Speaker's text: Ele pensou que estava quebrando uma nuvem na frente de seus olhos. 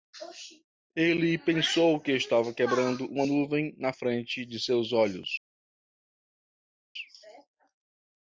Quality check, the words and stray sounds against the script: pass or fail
pass